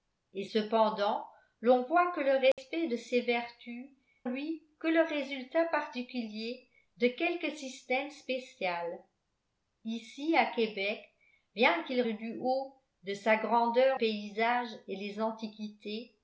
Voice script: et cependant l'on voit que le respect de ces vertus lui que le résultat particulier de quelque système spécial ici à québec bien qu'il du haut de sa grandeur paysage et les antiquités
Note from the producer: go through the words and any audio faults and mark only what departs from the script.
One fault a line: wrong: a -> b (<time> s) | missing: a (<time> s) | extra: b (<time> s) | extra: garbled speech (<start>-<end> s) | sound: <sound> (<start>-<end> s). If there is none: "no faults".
sound: dropout (2.5-2.6 s)